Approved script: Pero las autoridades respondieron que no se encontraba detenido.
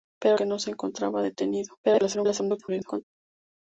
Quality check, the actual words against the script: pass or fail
fail